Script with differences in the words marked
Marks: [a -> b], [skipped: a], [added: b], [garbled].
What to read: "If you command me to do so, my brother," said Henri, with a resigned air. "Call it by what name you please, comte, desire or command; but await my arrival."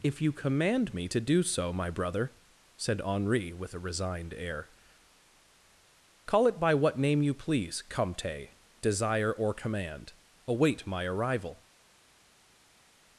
"If you command me to do so, my brother," said Henri, with a resigned air. "Call it by what name you please, comte, desire or command; [skipped: but] await my arrival."